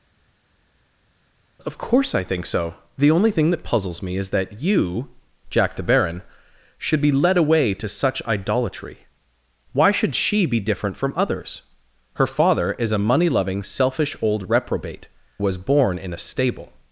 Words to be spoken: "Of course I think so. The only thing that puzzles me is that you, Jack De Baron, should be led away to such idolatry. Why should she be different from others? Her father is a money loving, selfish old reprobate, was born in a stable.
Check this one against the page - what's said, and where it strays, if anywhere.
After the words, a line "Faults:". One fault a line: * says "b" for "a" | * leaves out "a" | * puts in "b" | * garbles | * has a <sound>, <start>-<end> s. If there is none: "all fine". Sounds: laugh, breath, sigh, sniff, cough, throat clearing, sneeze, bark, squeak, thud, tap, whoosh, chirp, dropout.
"Of course I think so. The only thing that puzzles me is that you, Jack De Baron, should be led away to such idolatry. Why should she be different from others? Her father is a money loving, selfish old reprobate, was born in a stable.
Faults:
all fine